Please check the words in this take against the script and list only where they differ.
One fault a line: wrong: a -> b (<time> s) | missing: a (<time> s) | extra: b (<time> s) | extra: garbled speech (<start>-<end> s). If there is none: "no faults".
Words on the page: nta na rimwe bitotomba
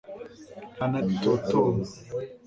missing: rimwe (1.0 s)